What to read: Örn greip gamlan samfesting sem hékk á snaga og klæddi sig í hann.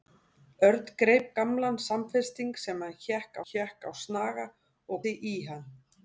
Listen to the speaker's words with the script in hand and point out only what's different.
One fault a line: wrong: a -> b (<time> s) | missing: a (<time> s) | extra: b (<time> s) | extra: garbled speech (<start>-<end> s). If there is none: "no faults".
extra: hékk (3.5 s)
missing: klæddi (5.0 s)